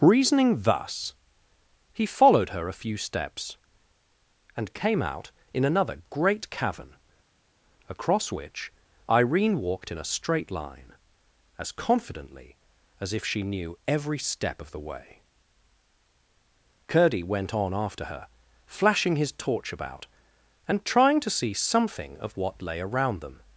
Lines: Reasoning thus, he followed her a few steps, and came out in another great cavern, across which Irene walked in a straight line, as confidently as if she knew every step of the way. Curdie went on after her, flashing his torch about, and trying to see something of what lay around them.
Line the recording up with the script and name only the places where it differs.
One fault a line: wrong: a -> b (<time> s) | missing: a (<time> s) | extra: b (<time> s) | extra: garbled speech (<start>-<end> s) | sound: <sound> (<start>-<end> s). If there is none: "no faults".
no faults